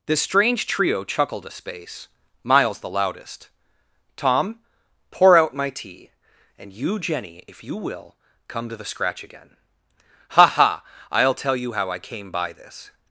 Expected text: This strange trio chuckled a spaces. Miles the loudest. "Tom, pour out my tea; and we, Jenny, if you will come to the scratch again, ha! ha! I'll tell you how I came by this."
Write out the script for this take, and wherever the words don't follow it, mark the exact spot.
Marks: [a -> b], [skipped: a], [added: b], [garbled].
This strange trio chuckled a [spaces. -> space] Miles the loudest. "Tom, pour out my tea; and [we, -> you] Jenny, if you will come to the scratch again, ha! ha! I'll tell you how I came by this."